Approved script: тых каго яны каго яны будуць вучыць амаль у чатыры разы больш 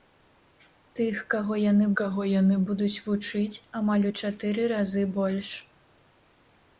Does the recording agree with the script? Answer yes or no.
yes